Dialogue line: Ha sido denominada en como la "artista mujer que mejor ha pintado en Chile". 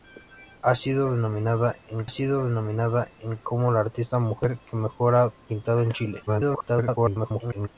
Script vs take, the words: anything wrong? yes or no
yes